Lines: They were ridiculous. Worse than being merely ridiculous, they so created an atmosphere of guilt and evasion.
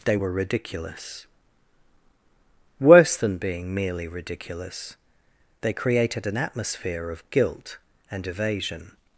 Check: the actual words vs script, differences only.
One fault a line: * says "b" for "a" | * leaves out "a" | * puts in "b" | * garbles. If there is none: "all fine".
* leaves out "so"